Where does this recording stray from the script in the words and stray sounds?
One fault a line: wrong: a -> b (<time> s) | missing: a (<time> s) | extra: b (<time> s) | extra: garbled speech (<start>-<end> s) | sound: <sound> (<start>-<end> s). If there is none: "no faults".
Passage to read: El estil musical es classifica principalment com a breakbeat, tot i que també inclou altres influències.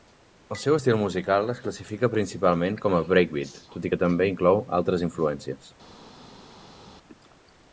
extra: seu (0.6 s)